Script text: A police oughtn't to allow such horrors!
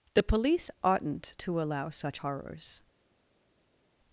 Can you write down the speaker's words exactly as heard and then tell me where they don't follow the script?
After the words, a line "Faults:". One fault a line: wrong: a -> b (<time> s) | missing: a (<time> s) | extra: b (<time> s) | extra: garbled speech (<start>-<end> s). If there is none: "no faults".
The police oughtn't to allow such horrors!
Faults:
wrong: A -> The (0.1 s)